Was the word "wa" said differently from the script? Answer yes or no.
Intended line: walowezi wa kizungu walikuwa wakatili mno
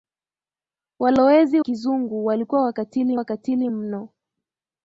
yes